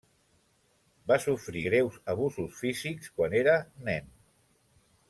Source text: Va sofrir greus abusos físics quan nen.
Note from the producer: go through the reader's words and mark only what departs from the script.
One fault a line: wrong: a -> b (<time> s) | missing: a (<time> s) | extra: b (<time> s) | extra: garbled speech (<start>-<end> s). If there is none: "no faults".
extra: era (3.4 s)